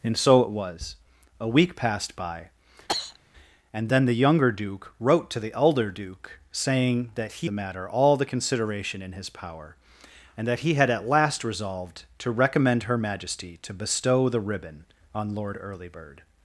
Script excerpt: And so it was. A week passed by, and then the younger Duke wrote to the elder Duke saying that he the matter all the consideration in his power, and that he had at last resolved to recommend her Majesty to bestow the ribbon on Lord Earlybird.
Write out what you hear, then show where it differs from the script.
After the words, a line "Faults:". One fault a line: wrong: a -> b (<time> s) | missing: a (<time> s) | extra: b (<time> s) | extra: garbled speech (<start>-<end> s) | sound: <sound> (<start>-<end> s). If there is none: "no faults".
And so it was. A week passed by, and then the younger Duke wrote to the elder Duke saying that he the matter all the consideration in his power, and that he had at last resolved to recommend her Majesty to bestow the ribbon on Lord Earlybird.
Faults:
sound: cough (2.9-3.2 s)